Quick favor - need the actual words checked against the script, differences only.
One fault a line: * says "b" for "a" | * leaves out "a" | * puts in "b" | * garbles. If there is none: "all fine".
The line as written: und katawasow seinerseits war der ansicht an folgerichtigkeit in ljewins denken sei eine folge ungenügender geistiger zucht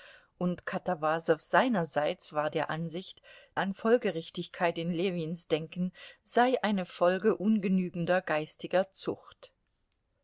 all fine